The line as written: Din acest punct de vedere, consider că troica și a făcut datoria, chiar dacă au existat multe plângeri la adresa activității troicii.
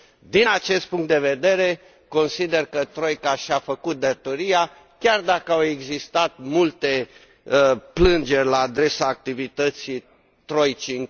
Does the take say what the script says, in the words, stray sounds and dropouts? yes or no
yes